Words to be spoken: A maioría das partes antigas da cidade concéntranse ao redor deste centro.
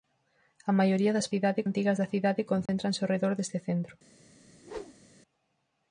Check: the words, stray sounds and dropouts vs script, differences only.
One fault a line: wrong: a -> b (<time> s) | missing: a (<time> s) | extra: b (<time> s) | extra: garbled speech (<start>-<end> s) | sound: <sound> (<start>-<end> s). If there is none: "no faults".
wrong: partes -> cidade (1.3 s)
sound: dropout (2.7-2.7 s)
sound: whoosh (4.4-5.1 s)